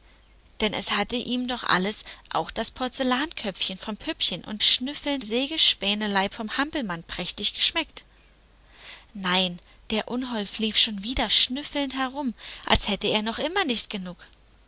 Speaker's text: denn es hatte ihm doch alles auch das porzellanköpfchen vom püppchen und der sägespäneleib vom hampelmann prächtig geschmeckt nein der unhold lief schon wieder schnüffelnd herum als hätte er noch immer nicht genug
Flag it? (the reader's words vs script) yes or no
yes